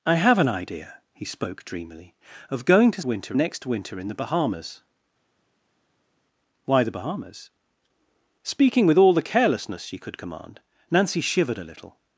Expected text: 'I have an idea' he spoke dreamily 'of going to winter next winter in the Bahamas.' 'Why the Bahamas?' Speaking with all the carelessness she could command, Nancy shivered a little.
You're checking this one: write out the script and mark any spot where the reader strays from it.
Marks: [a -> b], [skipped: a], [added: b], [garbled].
'I have an idea' he spoke dreamily 'of going to winter next winter in the Bahamas.' 'Why the Bahamas?' Speaking with all the carelessness she could command, Nancy shivered a little.